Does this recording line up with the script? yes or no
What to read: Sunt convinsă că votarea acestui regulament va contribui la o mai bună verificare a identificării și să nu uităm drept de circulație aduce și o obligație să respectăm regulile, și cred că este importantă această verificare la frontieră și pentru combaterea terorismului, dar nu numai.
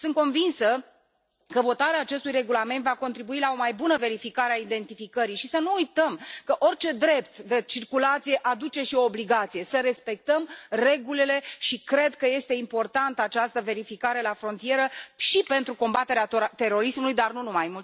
no